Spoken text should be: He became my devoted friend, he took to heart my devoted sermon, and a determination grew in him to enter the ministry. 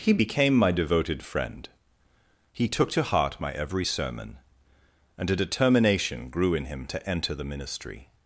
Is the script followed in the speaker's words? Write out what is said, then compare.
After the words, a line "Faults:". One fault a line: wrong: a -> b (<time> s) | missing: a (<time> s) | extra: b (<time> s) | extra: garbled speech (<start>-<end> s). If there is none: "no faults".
He became my devoted friend, he took to heart my every sermon, and a determination grew in him to enter the ministry.
Faults:
wrong: devoted -> every (3.5 s)